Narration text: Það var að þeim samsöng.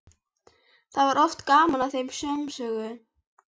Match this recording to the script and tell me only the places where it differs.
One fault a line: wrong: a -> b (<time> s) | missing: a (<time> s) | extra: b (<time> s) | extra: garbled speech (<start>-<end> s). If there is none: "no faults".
extra: oft gaman (1.2 s)